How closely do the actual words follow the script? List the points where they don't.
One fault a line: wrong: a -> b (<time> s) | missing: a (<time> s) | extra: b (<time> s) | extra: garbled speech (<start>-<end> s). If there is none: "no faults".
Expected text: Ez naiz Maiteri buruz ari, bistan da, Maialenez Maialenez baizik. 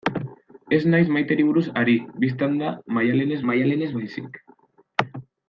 no faults